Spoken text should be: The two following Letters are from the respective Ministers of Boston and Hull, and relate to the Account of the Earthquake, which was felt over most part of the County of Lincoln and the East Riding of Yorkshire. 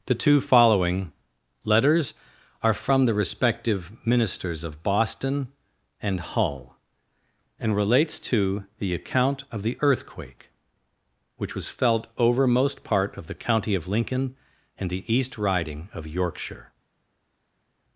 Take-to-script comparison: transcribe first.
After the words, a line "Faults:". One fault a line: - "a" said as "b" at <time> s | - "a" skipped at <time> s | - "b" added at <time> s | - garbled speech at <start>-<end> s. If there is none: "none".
The two following Letters are from the respective Ministers of Boston and Hull, and relates to the Account of the Earthquake, which was felt over most part of the County of Lincoln and the East Riding of Yorkshire.
Faults:
- "relate" said as "relates" at 7.7 s